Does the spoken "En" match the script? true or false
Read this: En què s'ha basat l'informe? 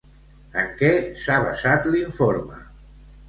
true